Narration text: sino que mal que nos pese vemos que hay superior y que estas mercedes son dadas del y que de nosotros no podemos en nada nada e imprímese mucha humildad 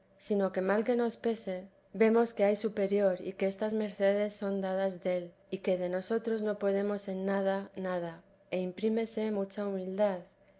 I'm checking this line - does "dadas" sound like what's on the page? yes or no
yes